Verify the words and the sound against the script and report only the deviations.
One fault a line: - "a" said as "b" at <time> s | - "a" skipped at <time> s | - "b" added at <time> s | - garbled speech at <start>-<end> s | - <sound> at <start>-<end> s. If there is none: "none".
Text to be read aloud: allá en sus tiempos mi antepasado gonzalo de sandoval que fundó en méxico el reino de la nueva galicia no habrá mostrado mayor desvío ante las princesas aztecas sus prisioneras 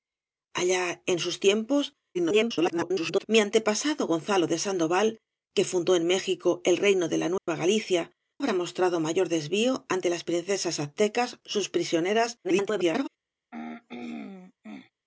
- garbled speech at 2.1-3.2 s
- dropout at 7.4-7.5 s
- "no" skipped at 8.1 s
- garbled speech at 12.4-13.1 s
- throat clearing at 13.5-14.9 s